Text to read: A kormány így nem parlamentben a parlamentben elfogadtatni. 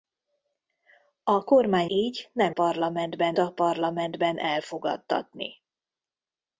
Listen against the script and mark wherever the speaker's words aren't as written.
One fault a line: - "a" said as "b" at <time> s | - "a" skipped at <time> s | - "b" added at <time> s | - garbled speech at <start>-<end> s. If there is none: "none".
none